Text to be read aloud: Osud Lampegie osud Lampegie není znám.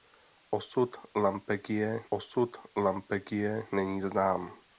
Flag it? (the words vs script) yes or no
no